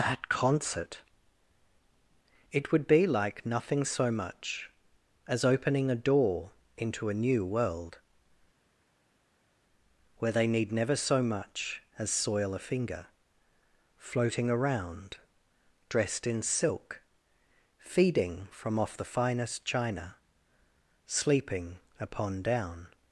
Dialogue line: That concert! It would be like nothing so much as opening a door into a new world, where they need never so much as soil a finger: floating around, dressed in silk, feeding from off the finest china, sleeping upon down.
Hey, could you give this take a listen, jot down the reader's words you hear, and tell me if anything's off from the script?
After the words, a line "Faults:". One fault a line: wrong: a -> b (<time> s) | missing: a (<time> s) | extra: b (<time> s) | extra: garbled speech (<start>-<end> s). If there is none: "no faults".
That concert! It would be like nothing so much as opening a door into a new world, where they need never so much as soil a finger: floating around, dressed in silk, feeding from off the finest china, sleeping upon down.
Faults:
no faults